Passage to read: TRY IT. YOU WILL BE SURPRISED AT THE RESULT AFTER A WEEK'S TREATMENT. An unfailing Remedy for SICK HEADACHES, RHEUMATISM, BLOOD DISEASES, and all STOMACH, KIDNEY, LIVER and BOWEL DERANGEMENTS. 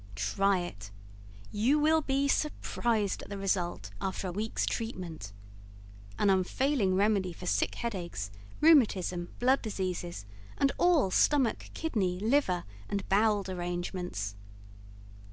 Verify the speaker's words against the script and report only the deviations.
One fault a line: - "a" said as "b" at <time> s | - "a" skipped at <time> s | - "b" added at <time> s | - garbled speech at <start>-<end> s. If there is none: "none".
none